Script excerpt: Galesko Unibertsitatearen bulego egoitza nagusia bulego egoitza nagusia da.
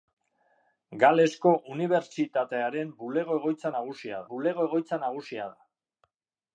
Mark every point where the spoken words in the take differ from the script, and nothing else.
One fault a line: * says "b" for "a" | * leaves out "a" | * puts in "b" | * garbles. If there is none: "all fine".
all fine